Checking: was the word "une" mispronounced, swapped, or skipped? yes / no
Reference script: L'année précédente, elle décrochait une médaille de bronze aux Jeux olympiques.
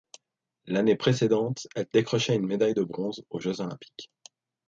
no